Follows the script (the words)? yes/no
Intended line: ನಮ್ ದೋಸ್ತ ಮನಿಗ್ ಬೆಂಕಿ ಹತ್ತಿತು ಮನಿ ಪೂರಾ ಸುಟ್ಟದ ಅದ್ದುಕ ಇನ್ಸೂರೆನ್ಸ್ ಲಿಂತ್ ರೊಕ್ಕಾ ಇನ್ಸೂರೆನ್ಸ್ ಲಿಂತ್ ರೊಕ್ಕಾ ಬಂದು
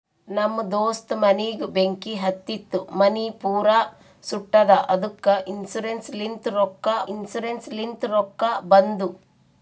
yes